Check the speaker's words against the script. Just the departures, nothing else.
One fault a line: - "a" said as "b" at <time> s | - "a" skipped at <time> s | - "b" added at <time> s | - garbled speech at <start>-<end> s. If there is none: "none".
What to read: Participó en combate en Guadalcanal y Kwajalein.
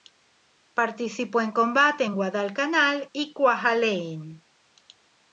none